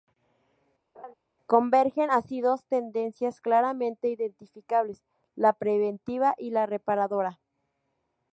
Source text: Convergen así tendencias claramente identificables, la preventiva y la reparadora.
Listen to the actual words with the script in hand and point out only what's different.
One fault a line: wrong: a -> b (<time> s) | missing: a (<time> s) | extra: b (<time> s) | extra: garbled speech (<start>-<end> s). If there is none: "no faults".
extra: dos (2.4 s)